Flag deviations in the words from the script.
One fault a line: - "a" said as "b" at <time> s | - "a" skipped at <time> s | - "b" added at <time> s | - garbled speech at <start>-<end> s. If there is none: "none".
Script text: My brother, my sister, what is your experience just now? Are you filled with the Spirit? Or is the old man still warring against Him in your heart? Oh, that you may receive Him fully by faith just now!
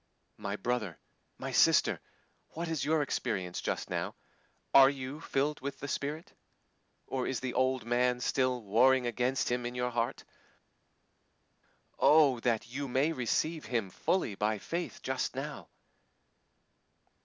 none